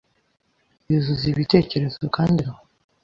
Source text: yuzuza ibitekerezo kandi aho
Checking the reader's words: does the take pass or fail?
pass